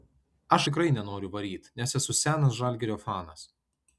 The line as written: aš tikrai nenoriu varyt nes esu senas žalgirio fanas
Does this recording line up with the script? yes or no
yes